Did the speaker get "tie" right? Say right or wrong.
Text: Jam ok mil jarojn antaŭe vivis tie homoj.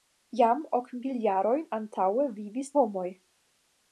wrong